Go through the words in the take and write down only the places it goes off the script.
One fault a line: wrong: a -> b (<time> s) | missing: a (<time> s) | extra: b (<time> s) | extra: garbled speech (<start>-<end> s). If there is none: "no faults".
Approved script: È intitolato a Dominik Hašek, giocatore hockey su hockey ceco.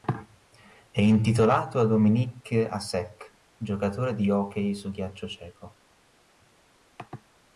extra: di (4.2 s)
wrong: hockey -> ghiaccio (4.9 s)